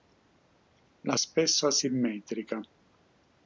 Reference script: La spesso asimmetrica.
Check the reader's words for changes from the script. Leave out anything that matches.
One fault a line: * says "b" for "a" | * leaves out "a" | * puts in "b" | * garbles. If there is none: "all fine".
all fine